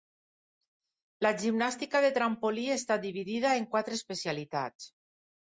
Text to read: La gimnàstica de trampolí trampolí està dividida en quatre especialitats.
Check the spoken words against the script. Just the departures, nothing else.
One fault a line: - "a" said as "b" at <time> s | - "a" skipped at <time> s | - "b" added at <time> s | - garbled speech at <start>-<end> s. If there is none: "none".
- "trampolí" skipped at 2.6 s